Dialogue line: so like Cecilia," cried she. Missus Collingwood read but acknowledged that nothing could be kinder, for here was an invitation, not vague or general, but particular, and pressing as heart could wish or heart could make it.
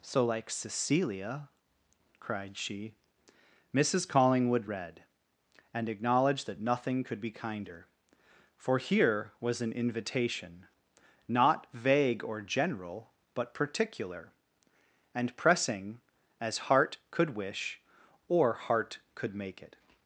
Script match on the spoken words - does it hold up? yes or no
no